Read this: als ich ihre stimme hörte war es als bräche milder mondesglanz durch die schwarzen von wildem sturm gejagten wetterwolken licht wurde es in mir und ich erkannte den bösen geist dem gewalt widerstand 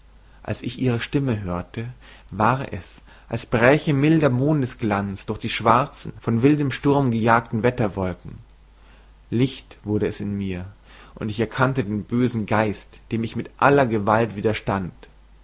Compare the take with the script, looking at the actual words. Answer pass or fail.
fail